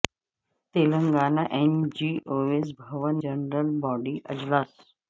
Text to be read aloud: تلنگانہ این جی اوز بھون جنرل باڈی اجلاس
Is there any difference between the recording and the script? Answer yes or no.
no